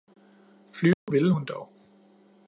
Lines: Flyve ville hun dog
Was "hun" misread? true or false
false